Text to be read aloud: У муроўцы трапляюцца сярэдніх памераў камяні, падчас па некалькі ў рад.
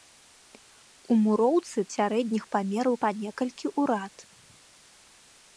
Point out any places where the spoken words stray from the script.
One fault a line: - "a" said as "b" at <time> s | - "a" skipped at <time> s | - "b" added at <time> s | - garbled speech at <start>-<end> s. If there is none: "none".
- "трапляюцца" skipped at 1.8 s
- "камяні падчас" skipped at 2.9 s